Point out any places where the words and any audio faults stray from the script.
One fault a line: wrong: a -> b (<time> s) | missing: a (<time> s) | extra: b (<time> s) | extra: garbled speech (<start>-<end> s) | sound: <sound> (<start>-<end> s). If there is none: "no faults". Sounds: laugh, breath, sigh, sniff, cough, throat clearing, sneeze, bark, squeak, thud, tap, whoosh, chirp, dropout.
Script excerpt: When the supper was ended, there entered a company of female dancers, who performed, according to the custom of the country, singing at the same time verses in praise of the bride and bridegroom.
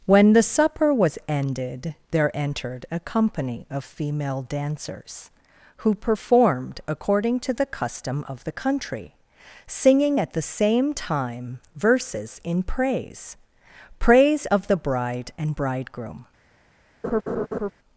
extra: praise (14.0 s)
sound: laugh (17.0-17.7 s)